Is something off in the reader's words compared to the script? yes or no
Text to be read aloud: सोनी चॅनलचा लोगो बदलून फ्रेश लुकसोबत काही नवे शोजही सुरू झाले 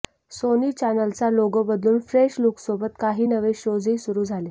no